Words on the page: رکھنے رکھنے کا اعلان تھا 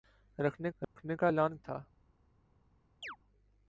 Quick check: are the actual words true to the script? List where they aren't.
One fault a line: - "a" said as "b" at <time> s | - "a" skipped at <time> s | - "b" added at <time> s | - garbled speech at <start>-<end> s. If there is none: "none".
none